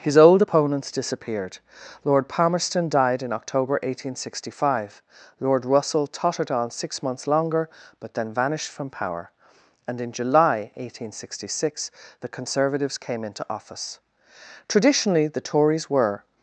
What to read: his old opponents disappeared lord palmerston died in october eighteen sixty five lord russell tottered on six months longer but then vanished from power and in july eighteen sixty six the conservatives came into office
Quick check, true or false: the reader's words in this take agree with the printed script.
false